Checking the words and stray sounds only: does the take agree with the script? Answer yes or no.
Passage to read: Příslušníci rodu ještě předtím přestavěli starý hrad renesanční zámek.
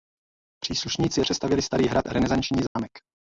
no